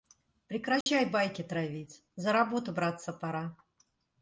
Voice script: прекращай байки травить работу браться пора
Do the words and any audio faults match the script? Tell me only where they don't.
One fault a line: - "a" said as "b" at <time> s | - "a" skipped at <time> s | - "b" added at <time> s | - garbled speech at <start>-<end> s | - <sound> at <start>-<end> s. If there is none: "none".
- dropout at 0.8-0.9 s
- "за" added at 2.1 s